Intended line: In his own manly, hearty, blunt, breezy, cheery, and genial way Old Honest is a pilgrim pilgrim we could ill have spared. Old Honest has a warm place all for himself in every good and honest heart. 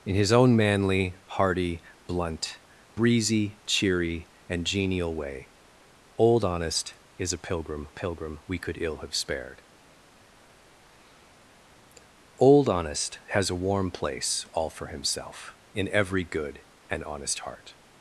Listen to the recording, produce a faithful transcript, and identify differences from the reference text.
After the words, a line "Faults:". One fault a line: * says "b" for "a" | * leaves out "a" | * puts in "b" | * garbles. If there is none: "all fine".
In his own manly, hearty, blunt, breezy, cheery, and genial way Old Honest is a pilgrim pilgrim we could ill have spared. Old Honest has a warm place all for himself in every good and honest heart.
Faults:
all fine